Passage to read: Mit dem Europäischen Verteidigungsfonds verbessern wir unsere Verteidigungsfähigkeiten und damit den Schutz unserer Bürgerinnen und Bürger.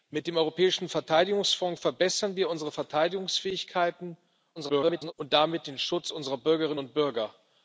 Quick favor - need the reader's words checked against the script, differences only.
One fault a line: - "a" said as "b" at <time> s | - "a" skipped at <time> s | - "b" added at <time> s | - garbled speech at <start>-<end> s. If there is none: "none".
- garbled speech at 4.6-5.1 s